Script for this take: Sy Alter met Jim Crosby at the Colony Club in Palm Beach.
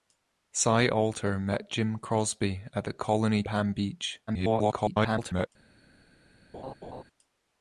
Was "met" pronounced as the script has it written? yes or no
yes